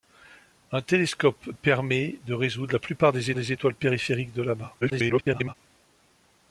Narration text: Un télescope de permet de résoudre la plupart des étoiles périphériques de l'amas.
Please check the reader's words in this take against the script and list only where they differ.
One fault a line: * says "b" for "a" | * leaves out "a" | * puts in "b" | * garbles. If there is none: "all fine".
* leaves out "de"
* puts in "des"
* garbles